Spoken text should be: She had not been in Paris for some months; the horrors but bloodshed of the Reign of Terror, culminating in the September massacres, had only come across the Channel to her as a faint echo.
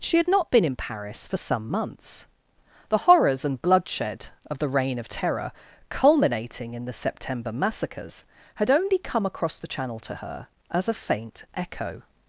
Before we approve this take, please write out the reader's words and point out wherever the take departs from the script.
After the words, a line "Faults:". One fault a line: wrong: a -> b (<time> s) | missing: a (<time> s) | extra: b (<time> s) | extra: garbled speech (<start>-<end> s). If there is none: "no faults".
She had not been in Paris for some months; the horrors and bloodshed of the Reign of Terror, culminating in the September massacres, had only come across the Channel to her as a faint echo.
Faults:
wrong: but -> and (3.4 s)